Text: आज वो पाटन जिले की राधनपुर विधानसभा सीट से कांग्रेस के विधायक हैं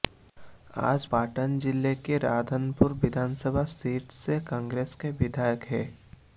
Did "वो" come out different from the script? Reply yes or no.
yes